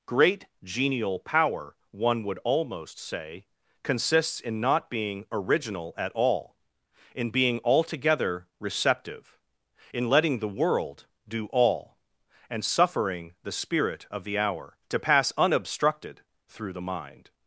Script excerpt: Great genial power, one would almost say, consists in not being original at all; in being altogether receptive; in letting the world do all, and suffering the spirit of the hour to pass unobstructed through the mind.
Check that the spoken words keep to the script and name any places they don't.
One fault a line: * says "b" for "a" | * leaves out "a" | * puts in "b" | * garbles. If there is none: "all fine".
all fine